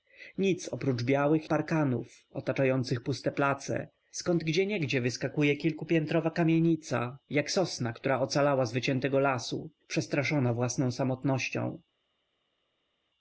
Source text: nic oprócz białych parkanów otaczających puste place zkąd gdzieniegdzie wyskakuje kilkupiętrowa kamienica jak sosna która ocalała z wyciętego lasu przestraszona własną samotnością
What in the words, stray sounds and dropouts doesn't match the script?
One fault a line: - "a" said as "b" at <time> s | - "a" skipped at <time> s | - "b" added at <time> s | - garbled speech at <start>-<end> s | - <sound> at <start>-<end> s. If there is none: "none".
none